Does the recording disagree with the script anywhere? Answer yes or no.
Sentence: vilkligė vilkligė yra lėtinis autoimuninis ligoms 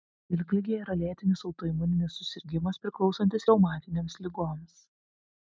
yes